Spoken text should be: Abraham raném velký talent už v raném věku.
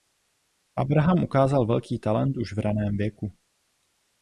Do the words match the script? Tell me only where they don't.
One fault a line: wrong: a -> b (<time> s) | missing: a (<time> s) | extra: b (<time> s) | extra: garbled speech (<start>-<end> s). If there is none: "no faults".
wrong: raném -> ukázal (1.2 s)